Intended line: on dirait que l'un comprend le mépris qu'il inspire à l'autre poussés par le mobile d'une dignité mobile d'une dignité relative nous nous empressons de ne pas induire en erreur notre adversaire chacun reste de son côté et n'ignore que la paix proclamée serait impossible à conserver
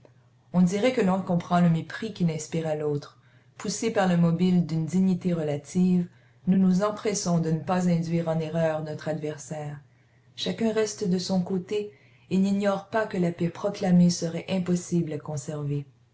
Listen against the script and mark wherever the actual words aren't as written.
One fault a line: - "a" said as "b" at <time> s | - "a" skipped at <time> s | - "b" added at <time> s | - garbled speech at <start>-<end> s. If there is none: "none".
- "mobile d'une dignité" skipped at 5.3 s
- "pas" added at 12.9 s